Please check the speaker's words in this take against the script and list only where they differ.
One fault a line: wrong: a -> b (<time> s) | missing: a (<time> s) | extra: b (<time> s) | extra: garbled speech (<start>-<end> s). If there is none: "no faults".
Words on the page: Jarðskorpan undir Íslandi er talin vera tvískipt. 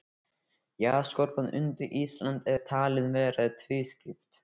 no faults